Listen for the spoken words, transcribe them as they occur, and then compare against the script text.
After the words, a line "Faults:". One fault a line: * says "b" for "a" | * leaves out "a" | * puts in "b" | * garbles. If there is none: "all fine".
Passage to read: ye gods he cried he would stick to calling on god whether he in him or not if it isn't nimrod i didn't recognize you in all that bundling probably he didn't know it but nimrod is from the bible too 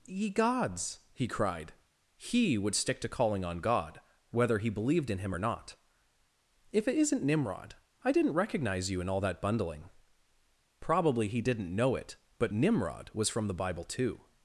ye gods he cried he would stick to calling on god whether he believed in him or not if it isn't nimrod i didn't recognize you in all that bundling probably he didn't know it but nimrod was from the bible too
Faults:
* puts in "believed"
* says "was" for "is"